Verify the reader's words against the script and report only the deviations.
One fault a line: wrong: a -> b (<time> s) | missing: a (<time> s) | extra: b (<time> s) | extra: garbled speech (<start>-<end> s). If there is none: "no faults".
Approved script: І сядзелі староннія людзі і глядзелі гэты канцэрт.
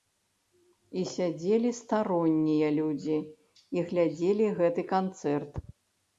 no faults